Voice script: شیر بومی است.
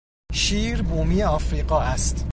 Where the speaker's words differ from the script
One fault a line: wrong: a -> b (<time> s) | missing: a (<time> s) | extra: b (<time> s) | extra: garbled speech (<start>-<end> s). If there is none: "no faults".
extra: افریقا (1.2 s)